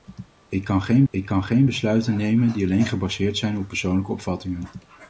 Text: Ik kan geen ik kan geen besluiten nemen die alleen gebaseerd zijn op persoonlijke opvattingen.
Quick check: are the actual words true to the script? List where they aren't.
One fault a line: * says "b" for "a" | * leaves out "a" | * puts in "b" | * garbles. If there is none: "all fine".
all fine